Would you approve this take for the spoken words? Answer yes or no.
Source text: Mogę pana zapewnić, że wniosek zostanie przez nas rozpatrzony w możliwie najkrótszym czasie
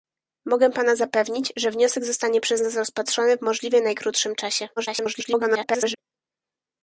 no